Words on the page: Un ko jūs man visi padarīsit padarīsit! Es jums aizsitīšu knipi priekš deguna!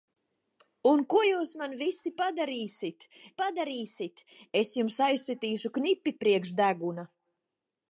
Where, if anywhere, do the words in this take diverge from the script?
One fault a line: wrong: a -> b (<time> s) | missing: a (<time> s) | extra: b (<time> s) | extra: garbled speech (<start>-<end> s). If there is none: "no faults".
no faults